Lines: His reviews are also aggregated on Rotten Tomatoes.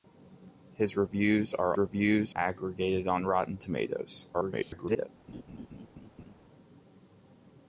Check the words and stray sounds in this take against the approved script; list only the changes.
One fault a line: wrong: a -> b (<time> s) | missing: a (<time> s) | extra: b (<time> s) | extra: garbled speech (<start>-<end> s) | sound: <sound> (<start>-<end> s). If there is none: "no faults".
wrong: also -> reviews (1.8 s)
extra: garbled speech (4.3-5.1 s)
sound: laugh (5.3-6.4 s)